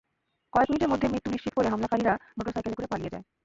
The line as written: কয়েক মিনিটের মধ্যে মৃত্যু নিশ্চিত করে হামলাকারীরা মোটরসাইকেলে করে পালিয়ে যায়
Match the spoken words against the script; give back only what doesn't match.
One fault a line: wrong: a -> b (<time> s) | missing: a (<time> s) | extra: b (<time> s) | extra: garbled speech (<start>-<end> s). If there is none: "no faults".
no faults